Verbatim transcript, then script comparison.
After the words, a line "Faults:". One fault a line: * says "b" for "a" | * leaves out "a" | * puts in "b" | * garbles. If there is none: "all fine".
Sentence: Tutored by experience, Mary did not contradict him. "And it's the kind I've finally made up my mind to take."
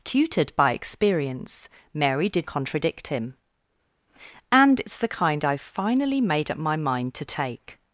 Tutored by experience, Mary did contradict him. "And it's the kind I've finally made up my mind to take."
Faults:
* leaves out "not"